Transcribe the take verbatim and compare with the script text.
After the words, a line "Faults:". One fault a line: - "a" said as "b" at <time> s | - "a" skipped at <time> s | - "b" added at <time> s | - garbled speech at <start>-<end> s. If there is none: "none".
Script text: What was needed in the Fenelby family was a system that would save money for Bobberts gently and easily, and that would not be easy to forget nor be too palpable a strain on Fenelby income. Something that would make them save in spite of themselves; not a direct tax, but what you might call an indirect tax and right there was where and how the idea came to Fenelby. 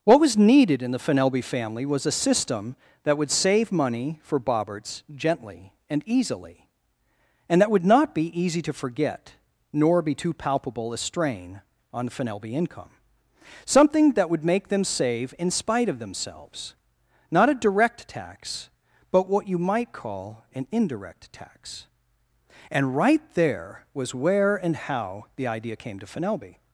What was needed in the Fenelby family was a system that would save money for Bobberts gently and easily, and that would not be easy to forget nor be too palpable a strain on Fenelby income. Something that would make them save in spite of themselves; not a direct tax, but what you might call an indirect tax and right there was where and how the idea came to Fenelby.
Faults:
none